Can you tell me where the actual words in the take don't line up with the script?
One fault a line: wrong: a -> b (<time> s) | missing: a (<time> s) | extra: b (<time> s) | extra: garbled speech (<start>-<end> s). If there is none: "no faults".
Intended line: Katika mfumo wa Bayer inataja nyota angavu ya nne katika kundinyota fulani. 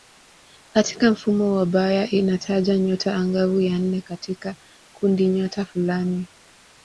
no faults